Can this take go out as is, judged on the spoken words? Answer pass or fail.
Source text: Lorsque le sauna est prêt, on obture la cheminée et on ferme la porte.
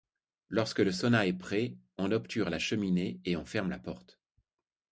pass